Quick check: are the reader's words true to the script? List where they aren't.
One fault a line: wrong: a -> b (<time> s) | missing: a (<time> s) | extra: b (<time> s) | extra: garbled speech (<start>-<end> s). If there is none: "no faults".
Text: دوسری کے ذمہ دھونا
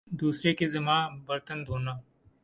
extra: برتن (1.2 s)